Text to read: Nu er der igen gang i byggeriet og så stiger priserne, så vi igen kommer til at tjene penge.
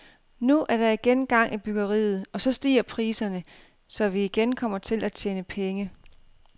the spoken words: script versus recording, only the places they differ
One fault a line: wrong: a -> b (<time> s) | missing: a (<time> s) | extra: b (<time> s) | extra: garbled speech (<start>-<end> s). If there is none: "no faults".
no faults